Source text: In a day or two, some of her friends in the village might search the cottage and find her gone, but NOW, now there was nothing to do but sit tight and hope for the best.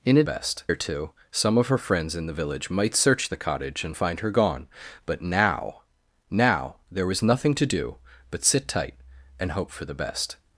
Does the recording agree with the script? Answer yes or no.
no